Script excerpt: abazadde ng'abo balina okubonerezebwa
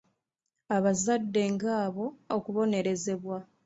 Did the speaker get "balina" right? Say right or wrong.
wrong